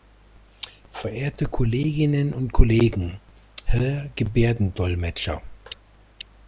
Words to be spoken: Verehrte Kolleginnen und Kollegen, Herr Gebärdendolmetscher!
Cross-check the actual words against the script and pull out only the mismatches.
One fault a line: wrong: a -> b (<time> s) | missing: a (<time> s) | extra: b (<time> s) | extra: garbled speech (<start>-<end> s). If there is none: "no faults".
no faults